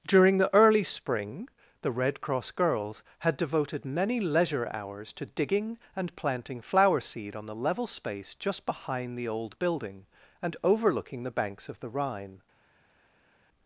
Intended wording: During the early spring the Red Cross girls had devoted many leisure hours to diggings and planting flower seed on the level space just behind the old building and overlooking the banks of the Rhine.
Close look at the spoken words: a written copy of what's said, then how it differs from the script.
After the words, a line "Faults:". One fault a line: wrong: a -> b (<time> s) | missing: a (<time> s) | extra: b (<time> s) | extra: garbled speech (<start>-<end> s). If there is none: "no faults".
During the early spring the Red Cross girls had devoted many leisure hours to digging and planting flower seed on the level space just behind the old building and overlooking the banks of the Rhine.
Faults:
wrong: diggings -> digging (5.3 s)